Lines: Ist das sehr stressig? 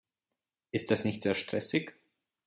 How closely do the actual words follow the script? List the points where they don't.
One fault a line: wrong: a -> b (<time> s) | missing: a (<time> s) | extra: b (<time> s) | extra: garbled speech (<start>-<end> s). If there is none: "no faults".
extra: nicht (1.1 s)